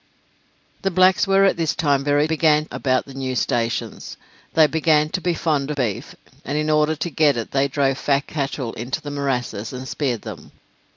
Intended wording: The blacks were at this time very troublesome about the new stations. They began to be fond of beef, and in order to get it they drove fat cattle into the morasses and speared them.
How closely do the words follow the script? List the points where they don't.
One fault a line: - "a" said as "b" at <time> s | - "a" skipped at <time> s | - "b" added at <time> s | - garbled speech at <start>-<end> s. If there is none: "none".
- "troublesome" said as "began" at 2.2 s
- "of" skipped at 5.7 s